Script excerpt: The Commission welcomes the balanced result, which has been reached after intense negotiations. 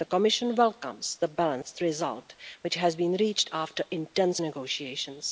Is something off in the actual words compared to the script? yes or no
no